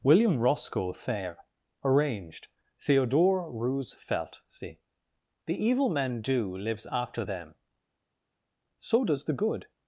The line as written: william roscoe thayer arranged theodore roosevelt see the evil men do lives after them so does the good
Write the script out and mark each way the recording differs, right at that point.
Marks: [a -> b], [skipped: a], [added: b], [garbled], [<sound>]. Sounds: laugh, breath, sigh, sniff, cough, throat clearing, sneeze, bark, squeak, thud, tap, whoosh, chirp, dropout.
william roscoe thayer arranged theodore roosevelt see the evil men do lives after them so does the good